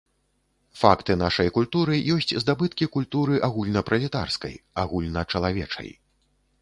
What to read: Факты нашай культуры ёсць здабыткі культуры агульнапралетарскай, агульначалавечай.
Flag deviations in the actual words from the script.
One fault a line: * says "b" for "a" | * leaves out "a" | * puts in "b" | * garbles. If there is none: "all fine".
all fine